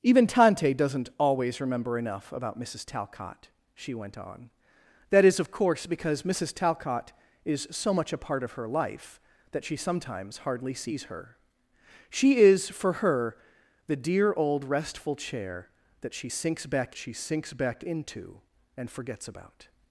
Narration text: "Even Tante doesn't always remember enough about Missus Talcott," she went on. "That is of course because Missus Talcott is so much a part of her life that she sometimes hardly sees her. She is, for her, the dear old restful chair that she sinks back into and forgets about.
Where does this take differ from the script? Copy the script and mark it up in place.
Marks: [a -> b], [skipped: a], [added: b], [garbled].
"Even Tante doesn't always remember enough about Missus Talcott," she went on. "That is of course because Missus Talcott is so much a part of her life that she sometimes hardly sees her. She is, for her, the dear old restful chair that she sinks back [added: she sinks back] into and forgets about.